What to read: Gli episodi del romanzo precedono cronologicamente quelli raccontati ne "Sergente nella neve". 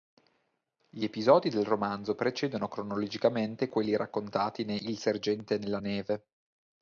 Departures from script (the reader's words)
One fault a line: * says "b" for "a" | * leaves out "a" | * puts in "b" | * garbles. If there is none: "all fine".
* puts in "Il"